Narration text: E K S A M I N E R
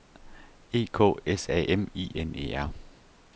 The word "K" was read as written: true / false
true